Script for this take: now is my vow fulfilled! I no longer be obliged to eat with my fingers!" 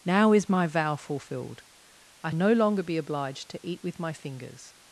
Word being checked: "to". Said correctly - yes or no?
yes